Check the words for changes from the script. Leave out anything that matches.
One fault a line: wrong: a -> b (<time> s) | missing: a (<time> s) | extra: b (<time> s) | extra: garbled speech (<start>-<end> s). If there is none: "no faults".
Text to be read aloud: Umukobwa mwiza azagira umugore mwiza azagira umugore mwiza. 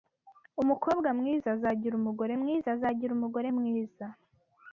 no faults